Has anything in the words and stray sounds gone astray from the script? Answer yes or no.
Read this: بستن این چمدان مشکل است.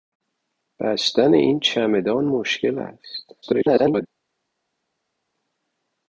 yes